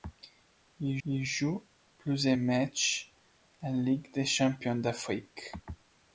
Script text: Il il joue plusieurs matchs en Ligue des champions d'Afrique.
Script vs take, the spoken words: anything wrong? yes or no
no